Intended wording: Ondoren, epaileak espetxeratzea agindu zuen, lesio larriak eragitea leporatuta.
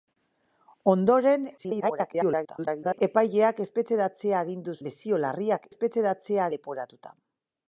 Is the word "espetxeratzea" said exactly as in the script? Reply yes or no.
yes